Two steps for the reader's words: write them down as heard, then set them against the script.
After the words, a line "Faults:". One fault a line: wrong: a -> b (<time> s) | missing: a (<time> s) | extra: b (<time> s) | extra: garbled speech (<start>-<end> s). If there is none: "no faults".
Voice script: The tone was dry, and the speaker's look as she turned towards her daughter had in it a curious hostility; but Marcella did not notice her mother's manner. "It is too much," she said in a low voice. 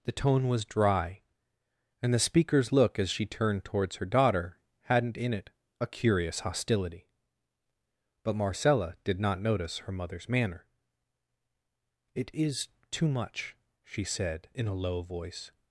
The tone was dry, and the speaker's look as she turned towards her daughter hadn't in it a curious hostility; but Marcella did not notice her mother's manner. "It is too much," she said in a low voice.
Faults:
wrong: had -> hadn't (4.8 s)